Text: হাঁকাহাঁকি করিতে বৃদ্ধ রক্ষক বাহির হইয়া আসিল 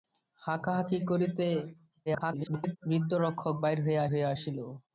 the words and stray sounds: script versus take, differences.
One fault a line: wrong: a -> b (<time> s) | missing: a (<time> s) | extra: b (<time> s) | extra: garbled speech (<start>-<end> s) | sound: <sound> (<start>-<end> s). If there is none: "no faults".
extra: garbled speech (2.1-2.8 s)
extra: হইয়া (4.1 s)